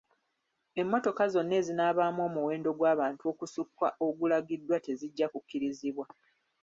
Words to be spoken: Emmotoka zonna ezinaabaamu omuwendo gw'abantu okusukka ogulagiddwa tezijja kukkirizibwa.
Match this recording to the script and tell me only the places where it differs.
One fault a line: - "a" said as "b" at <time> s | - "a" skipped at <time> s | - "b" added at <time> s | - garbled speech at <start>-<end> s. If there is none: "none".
none